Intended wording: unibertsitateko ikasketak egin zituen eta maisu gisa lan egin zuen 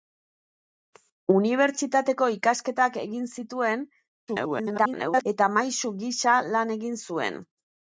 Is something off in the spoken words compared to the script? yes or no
yes